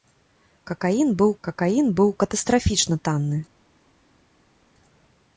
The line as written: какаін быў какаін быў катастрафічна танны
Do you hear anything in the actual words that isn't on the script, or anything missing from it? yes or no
no